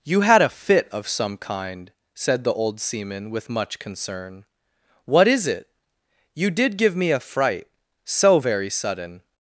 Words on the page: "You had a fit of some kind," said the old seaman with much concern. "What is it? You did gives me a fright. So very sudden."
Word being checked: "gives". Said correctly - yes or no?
no